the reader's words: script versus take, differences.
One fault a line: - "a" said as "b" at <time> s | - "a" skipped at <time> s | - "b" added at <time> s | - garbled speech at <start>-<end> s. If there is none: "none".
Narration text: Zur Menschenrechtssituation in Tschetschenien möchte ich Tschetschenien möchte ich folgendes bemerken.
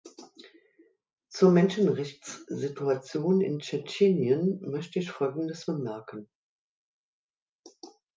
- "Tschetschenien möchte ich" skipped at 5.1 s